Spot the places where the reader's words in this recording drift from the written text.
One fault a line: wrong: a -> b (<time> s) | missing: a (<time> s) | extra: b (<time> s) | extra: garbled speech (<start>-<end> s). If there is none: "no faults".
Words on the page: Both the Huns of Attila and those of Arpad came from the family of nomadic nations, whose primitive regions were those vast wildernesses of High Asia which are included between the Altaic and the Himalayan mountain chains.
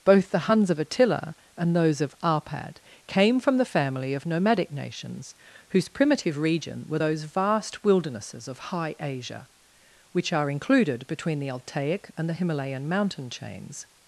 wrong: regions -> region (6.4 s)